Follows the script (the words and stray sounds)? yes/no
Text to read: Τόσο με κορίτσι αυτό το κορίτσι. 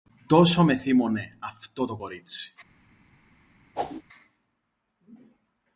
no